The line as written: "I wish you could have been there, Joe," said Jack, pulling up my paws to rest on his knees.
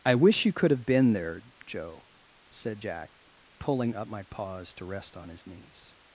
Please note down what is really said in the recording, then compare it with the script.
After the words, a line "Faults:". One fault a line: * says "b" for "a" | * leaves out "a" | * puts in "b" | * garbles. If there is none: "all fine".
"I wish you could have been there, Joe," said Jack, pulling up my paws to rest on his knees.
Faults:
all fine